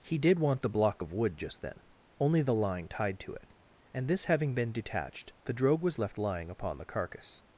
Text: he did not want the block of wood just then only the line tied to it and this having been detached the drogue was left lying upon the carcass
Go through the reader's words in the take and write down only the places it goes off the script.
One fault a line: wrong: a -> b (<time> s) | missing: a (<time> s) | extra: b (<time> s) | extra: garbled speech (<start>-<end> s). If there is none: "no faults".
missing: not (0.4 s)